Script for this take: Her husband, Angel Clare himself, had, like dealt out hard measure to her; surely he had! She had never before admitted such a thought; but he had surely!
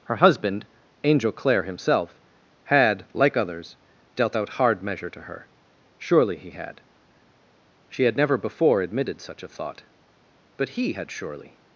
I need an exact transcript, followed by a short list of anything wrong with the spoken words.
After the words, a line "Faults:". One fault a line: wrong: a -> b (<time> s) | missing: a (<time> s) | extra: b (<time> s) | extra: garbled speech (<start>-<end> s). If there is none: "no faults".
Her husband, Angel Clare himself, had, like others, dealt out hard measure to her; surely he had! She had never before admitted such a thought; but he had surely!
Faults:
extra: others (3.4 s)